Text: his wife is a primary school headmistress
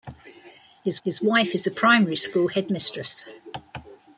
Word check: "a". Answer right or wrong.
right